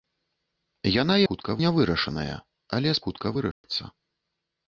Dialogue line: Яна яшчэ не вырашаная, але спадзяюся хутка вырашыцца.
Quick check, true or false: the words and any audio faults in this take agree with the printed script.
false